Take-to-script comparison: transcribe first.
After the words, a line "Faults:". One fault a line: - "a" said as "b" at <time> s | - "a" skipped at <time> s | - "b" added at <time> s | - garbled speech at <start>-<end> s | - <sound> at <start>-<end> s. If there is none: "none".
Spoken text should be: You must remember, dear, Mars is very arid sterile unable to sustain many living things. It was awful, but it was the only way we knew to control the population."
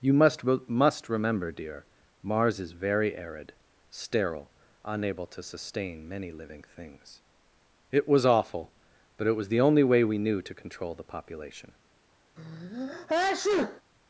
You must must remember, dear, Mars is very arid sterile unable to sustain many living things. It was awful, but it was the only way we knew to control the population."
Faults:
- "must" added at 0.4 s
- sneeze at 12.4-13.8 s